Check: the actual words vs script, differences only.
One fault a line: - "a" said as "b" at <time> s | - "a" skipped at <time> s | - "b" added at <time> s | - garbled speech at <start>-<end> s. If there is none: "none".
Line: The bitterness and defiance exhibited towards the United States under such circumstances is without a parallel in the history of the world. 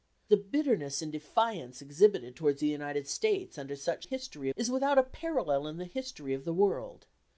- "circumstances" said as "history" at 4.0 s